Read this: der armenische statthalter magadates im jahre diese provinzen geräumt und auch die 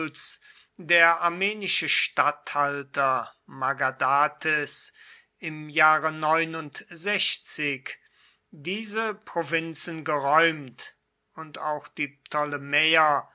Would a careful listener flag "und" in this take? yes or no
no